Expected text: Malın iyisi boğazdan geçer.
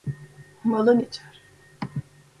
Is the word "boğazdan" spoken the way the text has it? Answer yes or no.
no